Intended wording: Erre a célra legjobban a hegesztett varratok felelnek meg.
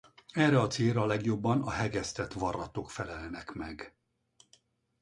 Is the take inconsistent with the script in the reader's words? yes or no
no